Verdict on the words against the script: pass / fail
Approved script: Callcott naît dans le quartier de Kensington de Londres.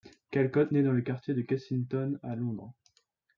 fail